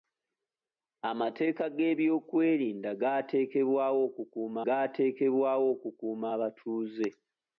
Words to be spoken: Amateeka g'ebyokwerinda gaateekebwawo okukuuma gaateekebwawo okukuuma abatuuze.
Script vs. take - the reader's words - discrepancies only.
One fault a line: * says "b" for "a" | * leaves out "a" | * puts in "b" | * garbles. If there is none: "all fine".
all fine